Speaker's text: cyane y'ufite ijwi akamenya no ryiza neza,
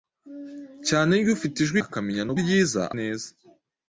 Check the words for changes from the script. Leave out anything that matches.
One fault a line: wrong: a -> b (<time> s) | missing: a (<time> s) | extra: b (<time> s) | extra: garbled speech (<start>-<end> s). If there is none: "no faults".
no faults